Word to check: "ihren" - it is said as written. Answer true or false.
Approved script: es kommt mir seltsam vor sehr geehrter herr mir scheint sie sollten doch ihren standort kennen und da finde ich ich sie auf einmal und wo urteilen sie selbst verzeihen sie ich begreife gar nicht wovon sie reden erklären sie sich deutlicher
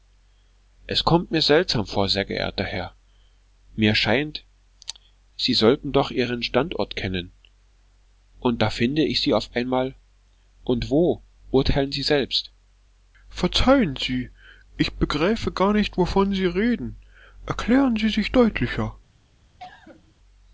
true